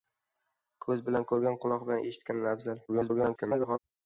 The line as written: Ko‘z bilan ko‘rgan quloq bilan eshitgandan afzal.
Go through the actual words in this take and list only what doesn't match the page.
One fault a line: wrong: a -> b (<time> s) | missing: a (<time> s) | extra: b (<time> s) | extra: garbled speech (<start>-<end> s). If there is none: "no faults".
extra: garbled speech (2.9-3.8 s)